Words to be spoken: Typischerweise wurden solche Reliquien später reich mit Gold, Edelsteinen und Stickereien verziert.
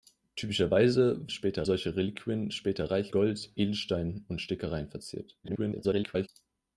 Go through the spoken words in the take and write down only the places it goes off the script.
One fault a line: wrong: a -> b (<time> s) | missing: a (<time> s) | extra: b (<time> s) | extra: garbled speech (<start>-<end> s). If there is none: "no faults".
wrong: wurden -> später (1.3 s)
missing: mit (3.1 s)
extra: garbled speech (5.4-6.3 s)